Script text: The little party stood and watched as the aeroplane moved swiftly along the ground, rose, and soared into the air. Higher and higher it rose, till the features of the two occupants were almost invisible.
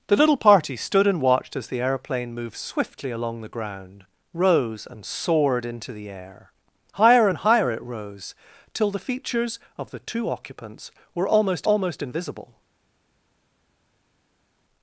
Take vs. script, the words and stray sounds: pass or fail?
fail